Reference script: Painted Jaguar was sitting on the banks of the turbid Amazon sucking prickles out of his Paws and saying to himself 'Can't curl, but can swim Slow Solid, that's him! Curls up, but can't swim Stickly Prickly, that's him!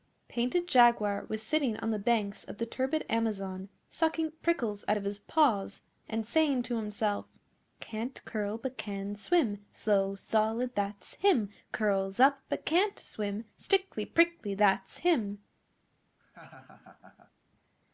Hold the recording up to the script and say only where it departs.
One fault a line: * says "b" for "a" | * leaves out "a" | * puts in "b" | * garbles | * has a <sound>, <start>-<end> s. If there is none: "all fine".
* has a laugh, 16.2-17.3 s